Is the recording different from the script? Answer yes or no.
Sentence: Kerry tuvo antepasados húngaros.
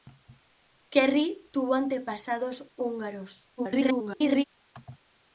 yes